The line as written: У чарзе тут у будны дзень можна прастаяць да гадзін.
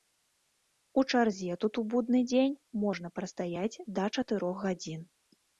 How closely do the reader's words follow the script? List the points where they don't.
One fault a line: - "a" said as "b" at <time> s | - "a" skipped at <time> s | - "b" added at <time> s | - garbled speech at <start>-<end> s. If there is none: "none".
- "чатырох" added at 4.2 s